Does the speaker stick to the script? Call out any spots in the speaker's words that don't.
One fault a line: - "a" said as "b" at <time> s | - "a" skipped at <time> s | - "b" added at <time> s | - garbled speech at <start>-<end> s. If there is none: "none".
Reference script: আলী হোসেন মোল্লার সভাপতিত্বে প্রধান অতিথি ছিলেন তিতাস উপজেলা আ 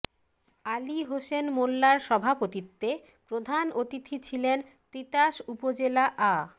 none